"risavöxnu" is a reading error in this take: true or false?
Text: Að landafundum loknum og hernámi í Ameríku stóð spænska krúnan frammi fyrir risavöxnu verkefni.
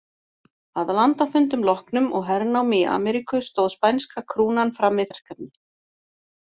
true